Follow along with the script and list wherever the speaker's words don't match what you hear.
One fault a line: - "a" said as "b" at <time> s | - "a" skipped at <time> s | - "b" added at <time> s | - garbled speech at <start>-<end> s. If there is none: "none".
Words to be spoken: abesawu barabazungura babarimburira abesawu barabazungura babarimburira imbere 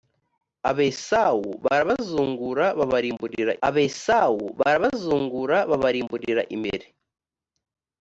none